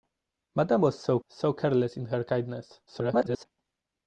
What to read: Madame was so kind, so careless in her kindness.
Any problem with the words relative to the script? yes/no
yes